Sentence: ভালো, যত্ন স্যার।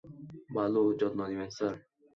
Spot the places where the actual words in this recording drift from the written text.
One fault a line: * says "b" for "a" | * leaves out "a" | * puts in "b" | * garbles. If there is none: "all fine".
* puts in "নিবেন"